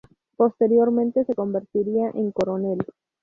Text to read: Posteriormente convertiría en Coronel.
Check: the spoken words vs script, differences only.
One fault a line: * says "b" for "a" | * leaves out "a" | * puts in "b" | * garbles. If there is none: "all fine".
* puts in "se"